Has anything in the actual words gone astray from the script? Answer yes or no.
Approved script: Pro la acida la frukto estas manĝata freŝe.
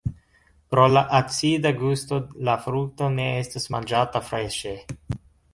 yes